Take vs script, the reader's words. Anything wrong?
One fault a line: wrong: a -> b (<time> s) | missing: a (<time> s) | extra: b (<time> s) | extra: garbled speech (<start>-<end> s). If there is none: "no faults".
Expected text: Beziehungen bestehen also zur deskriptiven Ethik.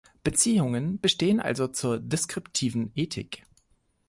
no faults